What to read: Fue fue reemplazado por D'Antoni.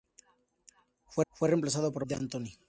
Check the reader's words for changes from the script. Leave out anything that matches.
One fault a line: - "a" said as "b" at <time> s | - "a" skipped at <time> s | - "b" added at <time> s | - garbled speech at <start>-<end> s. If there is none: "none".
none